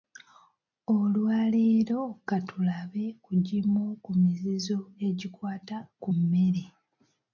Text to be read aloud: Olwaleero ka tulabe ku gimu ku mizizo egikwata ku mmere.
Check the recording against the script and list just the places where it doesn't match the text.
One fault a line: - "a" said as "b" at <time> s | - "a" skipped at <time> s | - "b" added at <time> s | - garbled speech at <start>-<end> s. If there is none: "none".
none